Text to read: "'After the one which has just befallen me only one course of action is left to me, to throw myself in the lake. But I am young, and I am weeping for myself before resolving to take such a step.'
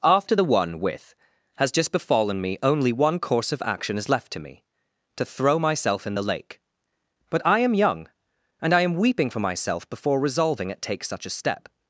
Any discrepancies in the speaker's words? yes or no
yes